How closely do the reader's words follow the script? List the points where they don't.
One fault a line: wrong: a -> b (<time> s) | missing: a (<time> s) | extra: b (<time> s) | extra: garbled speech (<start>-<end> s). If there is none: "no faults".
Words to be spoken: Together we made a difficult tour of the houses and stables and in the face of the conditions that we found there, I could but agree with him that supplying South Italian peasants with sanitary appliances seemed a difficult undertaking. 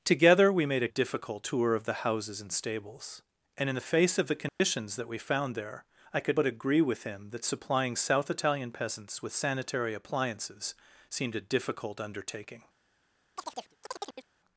no faults